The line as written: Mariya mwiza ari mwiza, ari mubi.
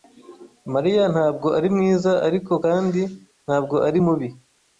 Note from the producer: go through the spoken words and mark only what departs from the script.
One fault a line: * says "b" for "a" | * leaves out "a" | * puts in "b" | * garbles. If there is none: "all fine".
* says "ntabwo" for "mwiza"
* puts in "ariko kandi ntabwo"